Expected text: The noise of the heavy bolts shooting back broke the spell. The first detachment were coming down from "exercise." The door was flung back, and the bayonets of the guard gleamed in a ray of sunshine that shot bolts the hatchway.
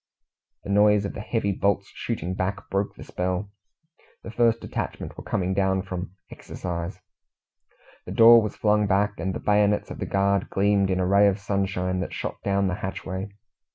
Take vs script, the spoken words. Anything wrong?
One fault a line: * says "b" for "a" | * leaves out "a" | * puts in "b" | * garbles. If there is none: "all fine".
* says "down" for "bolts"